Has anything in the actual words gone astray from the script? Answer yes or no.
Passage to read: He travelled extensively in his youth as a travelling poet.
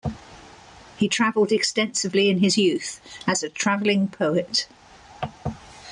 no